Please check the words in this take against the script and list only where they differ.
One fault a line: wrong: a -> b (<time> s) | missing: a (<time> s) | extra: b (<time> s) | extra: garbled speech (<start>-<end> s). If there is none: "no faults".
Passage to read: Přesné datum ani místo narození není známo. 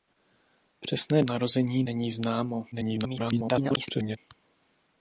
missing: datum ani místo (1.2 s)
extra: garbled speech (2.7-4.2 s)